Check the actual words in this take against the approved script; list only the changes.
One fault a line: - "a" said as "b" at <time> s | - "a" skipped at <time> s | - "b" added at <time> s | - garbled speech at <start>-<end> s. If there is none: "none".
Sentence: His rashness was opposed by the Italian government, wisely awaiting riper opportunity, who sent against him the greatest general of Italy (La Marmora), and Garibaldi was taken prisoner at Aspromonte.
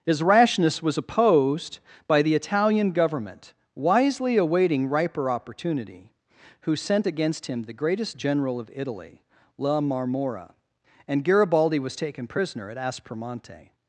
none